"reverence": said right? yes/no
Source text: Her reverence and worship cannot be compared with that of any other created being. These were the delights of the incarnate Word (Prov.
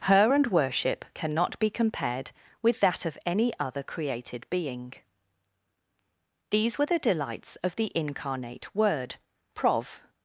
no